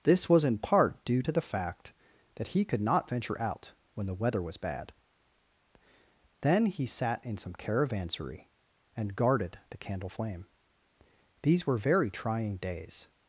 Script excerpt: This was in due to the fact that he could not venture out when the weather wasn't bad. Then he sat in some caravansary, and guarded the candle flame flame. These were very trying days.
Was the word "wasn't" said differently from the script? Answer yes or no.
yes